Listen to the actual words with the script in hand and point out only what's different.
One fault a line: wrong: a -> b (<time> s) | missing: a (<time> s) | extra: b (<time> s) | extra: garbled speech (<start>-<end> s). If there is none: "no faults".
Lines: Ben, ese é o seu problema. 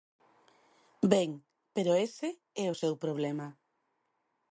extra: pero (1.8 s)